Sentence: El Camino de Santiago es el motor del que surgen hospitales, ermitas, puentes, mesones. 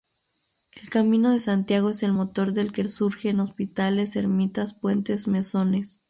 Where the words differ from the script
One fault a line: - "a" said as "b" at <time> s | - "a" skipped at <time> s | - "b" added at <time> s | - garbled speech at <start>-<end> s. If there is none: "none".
none